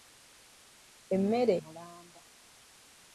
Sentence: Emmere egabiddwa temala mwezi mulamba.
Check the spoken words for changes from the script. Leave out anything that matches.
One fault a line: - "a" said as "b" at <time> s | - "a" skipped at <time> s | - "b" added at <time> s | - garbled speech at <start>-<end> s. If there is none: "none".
- "egabiddwa temala mwezi" skipped at 1.5 s